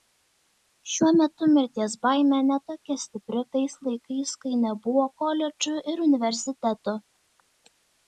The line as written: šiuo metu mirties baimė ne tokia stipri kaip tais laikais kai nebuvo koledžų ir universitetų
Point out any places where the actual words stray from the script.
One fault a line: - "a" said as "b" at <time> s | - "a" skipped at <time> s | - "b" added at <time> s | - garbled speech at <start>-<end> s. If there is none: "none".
- "kaip" skipped at 3.4 s